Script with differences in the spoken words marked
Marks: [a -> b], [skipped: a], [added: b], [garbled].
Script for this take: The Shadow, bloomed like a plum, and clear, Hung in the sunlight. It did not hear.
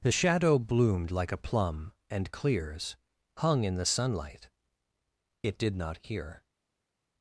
The Shadow, bloomed like a plum, and [clear, -> clears] Hung in the sunlight. It did not hear.